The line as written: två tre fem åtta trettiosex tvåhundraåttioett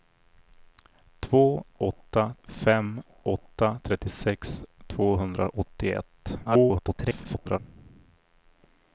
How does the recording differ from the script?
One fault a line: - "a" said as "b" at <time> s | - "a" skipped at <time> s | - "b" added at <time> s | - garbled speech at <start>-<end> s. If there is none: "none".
- "tre" said as "åtta" at 1.8 s
- garbled speech at 6.4-7.6 s